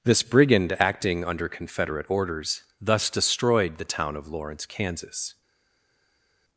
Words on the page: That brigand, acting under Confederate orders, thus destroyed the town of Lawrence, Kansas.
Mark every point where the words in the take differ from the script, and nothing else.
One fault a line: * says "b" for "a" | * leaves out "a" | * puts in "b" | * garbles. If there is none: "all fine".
* says "This" for "That"